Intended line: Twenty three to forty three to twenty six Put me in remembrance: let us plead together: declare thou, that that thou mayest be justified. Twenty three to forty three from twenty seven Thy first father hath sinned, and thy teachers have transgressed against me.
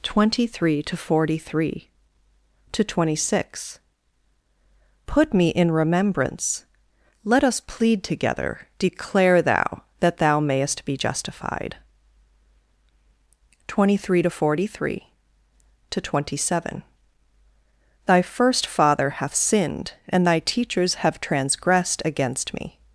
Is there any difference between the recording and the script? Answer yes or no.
yes